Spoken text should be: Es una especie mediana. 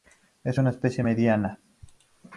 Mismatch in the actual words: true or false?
false